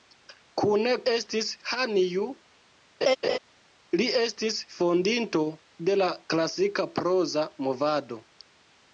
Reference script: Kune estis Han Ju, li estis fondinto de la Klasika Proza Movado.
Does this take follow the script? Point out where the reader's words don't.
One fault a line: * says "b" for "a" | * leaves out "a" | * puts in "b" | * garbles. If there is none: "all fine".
all fine